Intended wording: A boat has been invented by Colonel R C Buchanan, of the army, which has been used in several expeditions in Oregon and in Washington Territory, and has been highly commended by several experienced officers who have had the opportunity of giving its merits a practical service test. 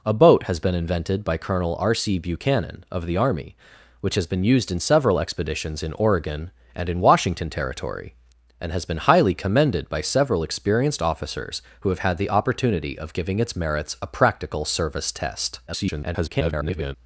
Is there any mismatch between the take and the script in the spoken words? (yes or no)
yes